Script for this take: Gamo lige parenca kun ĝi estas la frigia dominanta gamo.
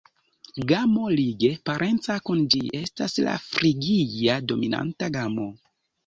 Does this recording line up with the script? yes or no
yes